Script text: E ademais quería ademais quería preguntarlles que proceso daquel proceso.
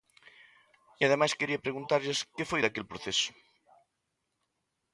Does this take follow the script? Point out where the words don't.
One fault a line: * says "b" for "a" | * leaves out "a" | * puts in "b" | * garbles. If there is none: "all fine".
* leaves out "ademais quería"
* says "foi" for "proceso"